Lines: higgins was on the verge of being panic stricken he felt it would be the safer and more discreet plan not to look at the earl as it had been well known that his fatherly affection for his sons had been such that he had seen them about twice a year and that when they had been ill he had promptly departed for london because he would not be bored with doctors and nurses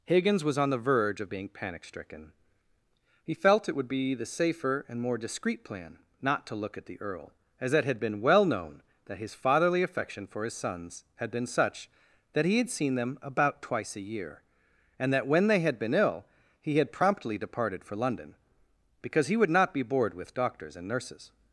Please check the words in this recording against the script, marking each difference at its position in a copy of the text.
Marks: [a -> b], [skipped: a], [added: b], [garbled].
higgins was on the verge of being panic stricken he felt it would be the safer and more discreet plan not to look at the earl as it had been well known that his fatherly affection for his sons had been such that he had seen them about twice a year and that when they had been ill he had promptly departed for london because he would not be bored with doctors and nurses